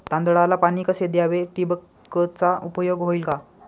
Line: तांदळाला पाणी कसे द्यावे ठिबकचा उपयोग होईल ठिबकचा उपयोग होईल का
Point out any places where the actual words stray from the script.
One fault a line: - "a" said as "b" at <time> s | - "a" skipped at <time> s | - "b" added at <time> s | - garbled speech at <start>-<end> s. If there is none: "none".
- "ठिबकचा उपयोग होईल" skipped at 3.2 s